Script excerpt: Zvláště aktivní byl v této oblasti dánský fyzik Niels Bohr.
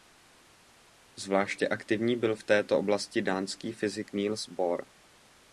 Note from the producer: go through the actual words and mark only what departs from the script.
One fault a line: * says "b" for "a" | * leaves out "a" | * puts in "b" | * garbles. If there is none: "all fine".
all fine